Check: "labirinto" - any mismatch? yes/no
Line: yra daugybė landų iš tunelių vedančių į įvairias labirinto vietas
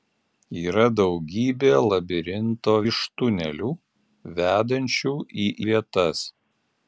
yes